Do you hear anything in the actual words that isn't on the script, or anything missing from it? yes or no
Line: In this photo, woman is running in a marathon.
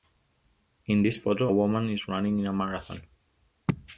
no